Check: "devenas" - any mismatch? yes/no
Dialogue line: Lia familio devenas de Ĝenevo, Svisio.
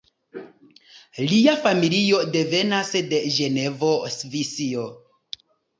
no